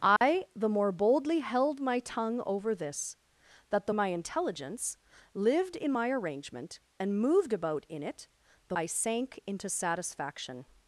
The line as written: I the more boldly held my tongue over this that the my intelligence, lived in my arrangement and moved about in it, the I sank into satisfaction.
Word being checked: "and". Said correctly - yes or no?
yes